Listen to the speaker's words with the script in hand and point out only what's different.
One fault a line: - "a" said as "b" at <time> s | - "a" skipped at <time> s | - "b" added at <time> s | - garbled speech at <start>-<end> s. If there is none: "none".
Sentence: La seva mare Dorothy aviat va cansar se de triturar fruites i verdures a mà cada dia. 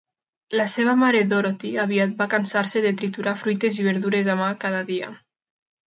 none